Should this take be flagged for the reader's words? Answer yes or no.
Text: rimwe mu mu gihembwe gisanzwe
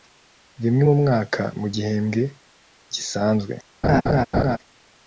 yes